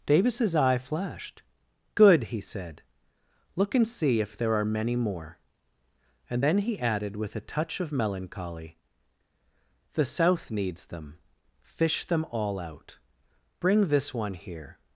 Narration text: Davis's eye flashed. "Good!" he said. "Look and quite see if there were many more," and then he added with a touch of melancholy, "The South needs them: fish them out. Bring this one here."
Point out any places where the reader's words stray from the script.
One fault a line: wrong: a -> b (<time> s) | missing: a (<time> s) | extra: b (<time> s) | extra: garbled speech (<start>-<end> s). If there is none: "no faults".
missing: quite (3.9 s)
wrong: were -> are (4.5 s)
extra: all (12.3 s)